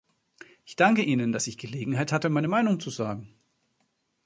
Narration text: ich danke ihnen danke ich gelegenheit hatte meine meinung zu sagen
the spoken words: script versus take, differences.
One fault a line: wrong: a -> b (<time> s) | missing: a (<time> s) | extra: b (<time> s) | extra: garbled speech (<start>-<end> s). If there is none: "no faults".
wrong: danke -> dass (1.3 s)